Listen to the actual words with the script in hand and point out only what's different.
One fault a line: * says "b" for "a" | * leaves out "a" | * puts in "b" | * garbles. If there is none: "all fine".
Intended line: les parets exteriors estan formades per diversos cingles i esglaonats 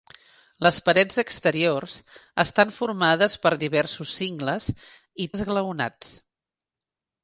all fine